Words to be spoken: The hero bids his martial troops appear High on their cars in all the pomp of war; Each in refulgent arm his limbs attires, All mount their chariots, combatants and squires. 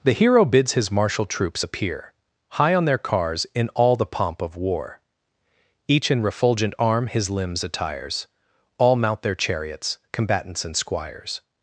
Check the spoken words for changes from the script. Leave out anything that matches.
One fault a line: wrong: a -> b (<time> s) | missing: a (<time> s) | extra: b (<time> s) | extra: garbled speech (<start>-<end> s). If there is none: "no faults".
no faults